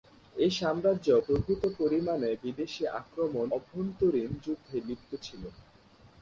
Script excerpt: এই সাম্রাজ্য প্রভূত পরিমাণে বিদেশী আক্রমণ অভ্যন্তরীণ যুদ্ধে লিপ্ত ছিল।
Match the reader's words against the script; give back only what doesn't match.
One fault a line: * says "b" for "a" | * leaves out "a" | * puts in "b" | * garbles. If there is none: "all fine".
all fine